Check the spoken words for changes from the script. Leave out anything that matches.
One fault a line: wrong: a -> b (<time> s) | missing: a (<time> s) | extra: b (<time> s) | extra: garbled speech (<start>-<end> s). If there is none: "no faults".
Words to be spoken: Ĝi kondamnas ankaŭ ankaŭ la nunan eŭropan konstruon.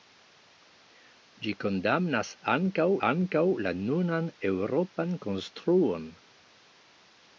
no faults